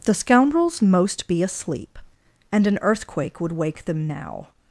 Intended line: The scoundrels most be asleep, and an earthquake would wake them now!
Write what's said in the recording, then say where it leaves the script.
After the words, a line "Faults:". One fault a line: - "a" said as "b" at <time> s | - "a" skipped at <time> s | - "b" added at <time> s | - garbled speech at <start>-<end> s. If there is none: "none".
The scoundrels most be asleep, and an earthquake would wake them now!
Faults:
none